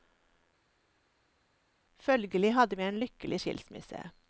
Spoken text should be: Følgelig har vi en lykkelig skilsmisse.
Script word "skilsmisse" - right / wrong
right